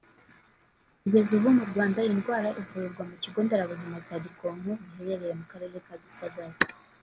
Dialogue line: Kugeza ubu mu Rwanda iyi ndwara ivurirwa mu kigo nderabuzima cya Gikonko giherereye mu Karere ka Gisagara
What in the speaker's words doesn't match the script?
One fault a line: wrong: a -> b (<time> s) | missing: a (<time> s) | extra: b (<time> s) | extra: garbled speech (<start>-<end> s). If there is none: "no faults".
no faults